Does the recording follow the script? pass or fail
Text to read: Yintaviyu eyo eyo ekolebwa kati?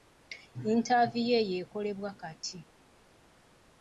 fail